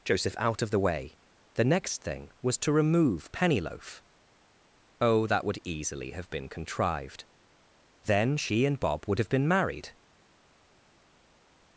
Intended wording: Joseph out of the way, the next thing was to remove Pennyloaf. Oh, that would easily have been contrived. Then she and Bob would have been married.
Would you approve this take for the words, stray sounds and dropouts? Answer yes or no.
yes